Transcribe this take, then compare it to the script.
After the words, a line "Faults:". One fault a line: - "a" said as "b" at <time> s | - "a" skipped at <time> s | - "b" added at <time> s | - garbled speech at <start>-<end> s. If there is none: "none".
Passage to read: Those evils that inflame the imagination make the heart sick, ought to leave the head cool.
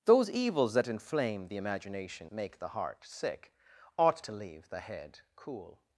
Those evils that inflame the imagination make the heart sick, ought to leave the head cool.
Faults:
none